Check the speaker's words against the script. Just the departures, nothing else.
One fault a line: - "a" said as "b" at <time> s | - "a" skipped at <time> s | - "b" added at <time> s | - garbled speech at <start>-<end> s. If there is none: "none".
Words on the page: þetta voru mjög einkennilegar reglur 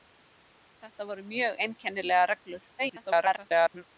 - garbled speech at 2.8-3.8 s